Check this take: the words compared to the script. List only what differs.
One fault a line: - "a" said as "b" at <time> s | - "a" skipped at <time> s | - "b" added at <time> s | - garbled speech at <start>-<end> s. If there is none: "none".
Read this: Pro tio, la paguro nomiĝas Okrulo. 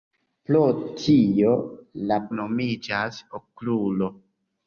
- "paguro" skipped at 2.2 s